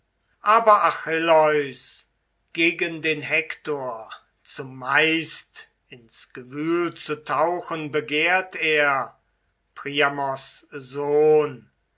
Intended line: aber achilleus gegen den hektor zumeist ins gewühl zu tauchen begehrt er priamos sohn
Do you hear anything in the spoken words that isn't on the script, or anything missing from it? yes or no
no